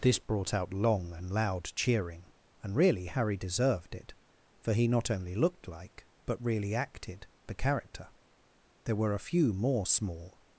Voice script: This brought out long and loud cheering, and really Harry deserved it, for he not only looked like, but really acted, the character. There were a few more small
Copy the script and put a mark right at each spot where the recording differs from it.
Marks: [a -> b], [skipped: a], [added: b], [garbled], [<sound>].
This brought out long and loud cheering, and really Harry deserved it, for he not only looked like, but really acted, the character. There were a few more small